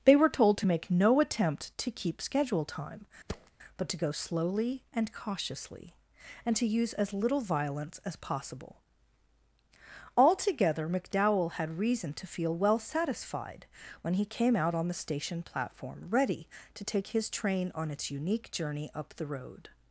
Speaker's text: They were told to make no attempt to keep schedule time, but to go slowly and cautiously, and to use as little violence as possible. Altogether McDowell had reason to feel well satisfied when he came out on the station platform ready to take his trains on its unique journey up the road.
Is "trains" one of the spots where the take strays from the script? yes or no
yes